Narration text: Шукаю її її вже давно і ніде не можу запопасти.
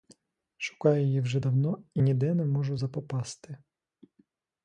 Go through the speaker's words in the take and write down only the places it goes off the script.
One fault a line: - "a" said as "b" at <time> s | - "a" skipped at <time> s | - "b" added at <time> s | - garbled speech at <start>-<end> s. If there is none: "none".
- "її" skipped at 1.2 s